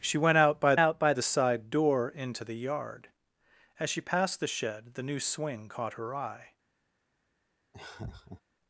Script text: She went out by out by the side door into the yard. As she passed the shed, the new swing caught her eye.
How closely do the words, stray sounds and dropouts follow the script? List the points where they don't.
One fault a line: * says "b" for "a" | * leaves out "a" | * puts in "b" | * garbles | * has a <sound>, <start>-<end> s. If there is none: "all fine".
* has a laugh, 7.7-8.4 s